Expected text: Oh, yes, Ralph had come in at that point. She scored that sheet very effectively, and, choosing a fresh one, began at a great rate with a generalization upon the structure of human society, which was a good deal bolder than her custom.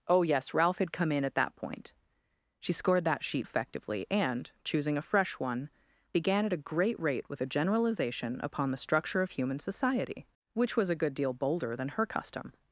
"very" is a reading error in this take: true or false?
true